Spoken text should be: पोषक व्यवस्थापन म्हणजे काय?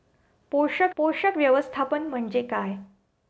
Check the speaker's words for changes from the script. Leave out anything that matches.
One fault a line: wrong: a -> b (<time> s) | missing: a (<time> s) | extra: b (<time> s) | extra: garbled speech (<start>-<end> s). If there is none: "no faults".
extra: पोषक (1.0 s)